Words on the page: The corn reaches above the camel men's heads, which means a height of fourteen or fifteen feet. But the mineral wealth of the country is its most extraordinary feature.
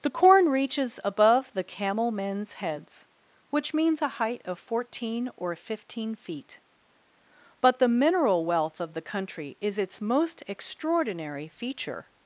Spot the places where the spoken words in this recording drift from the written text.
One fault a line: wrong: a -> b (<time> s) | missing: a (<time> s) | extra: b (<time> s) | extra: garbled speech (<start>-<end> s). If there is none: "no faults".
no faults